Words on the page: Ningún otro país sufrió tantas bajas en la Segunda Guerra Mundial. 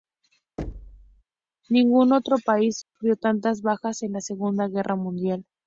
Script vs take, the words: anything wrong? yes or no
no